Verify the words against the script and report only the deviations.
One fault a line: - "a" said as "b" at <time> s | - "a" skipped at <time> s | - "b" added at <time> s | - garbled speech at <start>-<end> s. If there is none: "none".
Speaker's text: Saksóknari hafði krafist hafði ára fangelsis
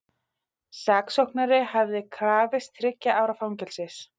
- "hafði" said as "þriggja" at 2.8 s